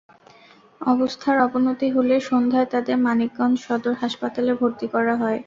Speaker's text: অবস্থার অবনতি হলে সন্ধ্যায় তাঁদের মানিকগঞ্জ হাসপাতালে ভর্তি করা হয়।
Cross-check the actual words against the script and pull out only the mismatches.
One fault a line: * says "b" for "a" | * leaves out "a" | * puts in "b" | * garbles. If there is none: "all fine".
* puts in "সদর"